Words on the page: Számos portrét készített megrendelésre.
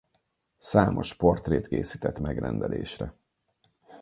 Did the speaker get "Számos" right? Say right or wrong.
right